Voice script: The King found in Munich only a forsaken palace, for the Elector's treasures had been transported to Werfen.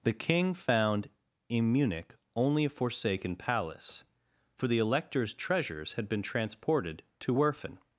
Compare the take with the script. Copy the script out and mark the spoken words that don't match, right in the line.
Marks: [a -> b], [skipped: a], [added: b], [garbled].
The King found in Munich only a forsaken palace, for the Elector's treasures had been transported to Werfen.